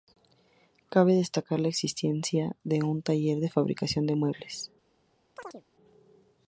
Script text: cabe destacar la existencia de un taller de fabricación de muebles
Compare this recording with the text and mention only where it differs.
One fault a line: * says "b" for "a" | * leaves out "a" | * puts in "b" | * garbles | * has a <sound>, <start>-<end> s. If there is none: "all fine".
* has a chirp, 5.4-5.6 s